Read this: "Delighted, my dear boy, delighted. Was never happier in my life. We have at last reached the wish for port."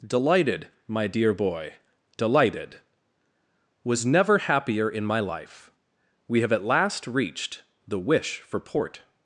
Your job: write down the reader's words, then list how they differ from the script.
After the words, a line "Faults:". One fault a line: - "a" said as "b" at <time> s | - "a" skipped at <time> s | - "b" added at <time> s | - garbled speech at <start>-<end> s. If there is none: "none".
"Delighted, my dear boy, delighted. Was never happier in my life. We have at last reached the wish for port."
Faults:
none